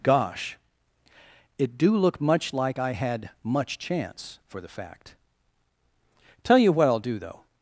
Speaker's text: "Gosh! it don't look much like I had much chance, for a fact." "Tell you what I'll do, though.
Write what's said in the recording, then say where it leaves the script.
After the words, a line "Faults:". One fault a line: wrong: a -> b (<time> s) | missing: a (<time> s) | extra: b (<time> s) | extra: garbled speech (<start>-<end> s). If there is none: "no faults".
"Gosh! it do look much like I had much chance, for the fact." "Tell you what I'll do, though.
Faults:
wrong: don't -> do (1.8 s)
wrong: a -> the (4.6 s)